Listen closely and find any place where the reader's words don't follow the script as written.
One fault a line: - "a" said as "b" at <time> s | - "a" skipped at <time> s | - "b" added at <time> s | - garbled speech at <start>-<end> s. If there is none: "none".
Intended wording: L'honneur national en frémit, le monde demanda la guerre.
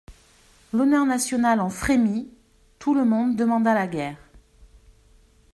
- "tout" added at 2.8 s